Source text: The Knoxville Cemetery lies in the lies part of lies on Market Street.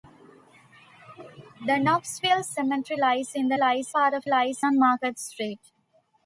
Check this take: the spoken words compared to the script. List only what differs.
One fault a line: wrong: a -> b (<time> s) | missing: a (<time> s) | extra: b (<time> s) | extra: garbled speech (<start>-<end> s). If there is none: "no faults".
no faults